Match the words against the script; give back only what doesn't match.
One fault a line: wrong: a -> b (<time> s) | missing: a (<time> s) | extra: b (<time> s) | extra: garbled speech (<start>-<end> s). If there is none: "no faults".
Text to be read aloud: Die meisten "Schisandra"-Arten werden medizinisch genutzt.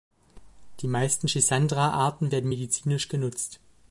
no faults